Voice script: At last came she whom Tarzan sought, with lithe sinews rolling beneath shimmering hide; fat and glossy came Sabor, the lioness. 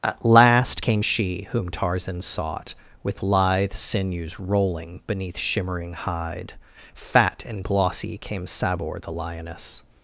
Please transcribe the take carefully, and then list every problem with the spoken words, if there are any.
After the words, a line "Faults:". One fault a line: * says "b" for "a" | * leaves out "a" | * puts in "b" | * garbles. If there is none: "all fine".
At last came she whom Tarzan sought, with lithe sinews rolling beneath shimmering hide; fat and glossy came Sabor, the lioness.
Faults:
all fine